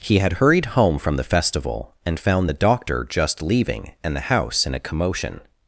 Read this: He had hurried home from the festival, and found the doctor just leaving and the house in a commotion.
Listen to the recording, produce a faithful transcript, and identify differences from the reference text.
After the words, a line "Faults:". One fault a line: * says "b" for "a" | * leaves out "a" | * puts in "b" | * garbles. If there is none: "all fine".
He had hurried home from the festival, and found the doctor just leaving and the house in a commotion.
Faults:
all fine